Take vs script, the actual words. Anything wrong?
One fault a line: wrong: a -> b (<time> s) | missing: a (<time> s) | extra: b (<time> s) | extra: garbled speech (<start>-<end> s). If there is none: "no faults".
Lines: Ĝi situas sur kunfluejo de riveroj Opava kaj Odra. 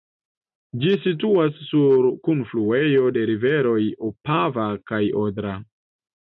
no faults